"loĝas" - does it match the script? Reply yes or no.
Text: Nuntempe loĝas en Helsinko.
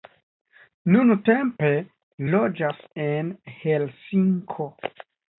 yes